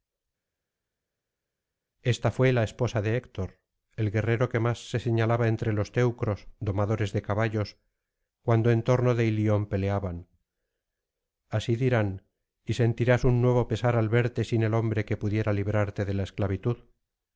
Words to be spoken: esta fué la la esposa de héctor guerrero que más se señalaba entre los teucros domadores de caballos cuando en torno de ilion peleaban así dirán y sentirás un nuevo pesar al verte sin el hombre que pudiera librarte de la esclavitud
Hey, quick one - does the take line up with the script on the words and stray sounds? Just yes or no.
no